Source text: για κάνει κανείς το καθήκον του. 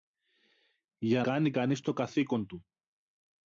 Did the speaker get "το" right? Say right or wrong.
right